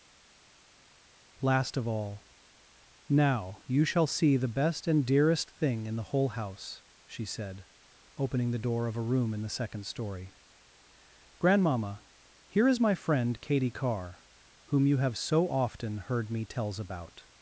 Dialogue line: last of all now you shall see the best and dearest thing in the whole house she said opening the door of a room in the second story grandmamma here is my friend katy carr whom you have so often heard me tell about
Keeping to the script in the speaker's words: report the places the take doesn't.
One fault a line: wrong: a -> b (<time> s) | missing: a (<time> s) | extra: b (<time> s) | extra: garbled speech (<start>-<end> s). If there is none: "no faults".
wrong: tell -> tells (16.4 s)